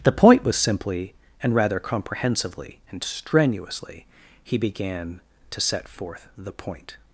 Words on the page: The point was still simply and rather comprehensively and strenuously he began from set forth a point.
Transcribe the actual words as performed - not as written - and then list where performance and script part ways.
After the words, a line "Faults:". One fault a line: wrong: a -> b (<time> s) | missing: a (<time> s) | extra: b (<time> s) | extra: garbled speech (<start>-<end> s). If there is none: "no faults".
The point was simply and rather comprehensively and strenuously he began to set forth the point.
Faults:
missing: still (0.6 s)
wrong: from -> to (5.5 s)
wrong: a -> the (6.4 s)